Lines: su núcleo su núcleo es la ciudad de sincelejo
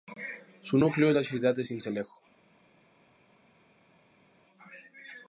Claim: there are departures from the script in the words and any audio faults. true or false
true